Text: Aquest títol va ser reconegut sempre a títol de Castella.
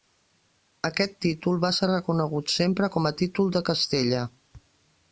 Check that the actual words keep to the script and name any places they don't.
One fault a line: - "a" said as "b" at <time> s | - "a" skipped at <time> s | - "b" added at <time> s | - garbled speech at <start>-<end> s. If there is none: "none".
- "com" added at 3.0 s